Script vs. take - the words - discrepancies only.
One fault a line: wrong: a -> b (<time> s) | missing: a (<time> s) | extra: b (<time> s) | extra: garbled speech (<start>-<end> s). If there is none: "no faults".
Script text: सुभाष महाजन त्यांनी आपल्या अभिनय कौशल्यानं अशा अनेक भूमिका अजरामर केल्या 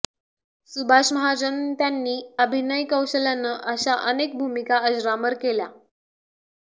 missing: आपल्या (2.1 s)